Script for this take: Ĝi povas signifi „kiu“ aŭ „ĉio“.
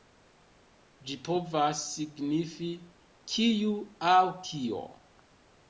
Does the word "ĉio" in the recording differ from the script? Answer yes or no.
yes